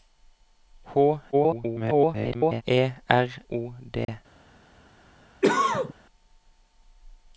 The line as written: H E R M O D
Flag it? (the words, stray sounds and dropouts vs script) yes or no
yes